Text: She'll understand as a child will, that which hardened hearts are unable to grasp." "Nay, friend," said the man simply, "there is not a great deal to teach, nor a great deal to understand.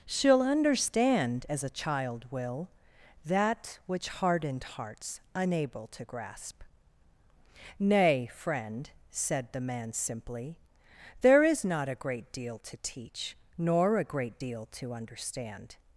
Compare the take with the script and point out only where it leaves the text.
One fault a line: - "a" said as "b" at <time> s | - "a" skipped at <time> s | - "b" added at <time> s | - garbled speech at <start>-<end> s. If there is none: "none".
- "are" skipped at 5.2 s